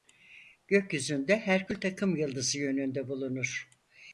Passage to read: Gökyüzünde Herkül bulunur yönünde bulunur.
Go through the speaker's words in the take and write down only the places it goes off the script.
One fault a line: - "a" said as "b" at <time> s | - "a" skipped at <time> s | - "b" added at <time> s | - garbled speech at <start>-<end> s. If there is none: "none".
- "bulunur" said as "takımyıldızı" at 1.8 s